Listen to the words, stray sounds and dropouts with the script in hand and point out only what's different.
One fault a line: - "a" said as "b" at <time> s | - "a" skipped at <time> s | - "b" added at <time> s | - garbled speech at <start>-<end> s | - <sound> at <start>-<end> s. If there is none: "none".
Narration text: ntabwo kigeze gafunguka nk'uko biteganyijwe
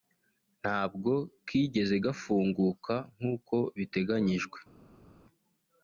none